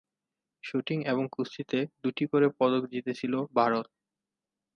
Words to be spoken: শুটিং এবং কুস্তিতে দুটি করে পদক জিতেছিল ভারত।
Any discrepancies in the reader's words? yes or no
no